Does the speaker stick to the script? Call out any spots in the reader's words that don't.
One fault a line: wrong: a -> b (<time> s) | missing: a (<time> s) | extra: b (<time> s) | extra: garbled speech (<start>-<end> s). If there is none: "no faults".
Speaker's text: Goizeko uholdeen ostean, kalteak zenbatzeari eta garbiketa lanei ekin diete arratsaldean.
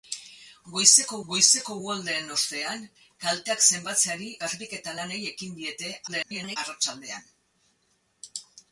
extra: goizeko (1.3 s)
missing: eta (4.3 s)
extra: garbled speech (6.1-6.6 s)